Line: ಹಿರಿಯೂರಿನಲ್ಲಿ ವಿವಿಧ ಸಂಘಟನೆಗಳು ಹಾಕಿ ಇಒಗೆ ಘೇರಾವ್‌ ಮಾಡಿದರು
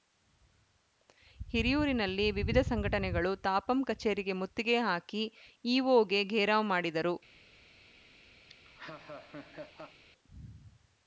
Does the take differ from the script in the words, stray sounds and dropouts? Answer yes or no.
yes